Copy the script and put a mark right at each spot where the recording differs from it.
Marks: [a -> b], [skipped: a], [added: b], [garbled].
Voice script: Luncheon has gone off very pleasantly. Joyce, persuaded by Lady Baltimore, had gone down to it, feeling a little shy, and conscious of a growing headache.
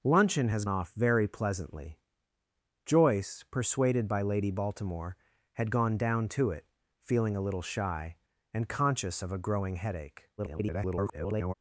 Luncheon has [skipped: gone] off very pleasantly. Joyce, persuaded by Lady Baltimore, had gone down to it, feeling a little shy, and conscious of a growing headache. [garbled]